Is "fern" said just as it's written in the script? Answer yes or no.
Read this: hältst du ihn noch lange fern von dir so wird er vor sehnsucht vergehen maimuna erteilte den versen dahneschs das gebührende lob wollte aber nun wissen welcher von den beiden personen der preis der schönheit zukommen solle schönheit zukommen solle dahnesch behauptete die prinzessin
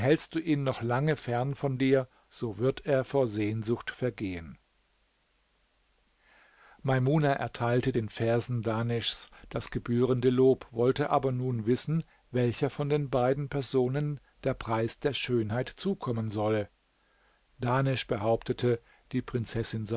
yes